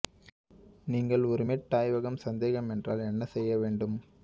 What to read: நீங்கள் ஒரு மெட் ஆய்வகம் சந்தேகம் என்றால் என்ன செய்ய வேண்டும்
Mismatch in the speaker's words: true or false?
false